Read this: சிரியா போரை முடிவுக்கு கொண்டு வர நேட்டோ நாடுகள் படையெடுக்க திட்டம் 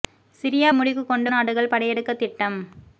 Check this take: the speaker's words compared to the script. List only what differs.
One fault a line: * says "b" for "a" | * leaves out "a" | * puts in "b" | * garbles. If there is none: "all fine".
* leaves out "போரை"
* leaves out "வர நேட்டோ"